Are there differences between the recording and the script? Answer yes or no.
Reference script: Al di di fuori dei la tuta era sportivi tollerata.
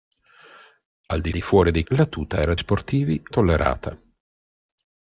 no